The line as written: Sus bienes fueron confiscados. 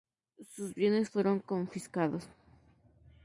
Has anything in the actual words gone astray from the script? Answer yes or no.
no